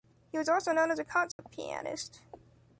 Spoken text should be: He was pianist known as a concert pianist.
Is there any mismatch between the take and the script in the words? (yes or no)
yes